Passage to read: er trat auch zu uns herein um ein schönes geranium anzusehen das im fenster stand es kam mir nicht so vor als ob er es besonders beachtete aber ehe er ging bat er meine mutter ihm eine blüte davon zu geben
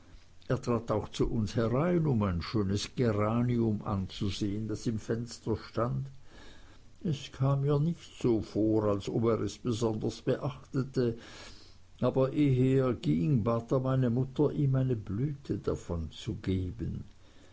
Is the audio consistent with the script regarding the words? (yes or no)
yes